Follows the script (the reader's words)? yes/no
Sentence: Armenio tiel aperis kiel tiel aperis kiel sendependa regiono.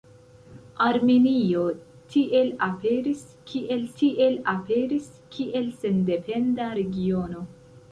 yes